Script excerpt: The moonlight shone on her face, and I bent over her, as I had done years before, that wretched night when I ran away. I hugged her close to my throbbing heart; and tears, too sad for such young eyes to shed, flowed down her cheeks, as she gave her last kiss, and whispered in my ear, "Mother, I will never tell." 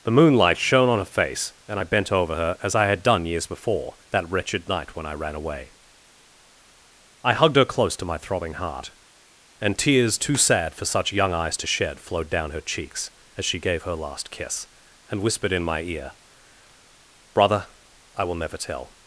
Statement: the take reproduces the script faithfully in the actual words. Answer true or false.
false